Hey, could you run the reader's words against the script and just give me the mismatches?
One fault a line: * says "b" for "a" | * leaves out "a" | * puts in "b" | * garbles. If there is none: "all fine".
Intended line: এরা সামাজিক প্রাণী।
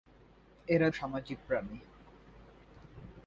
all fine